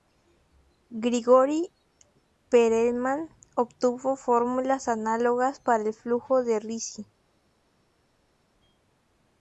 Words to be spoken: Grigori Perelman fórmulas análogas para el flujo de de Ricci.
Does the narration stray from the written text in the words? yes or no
yes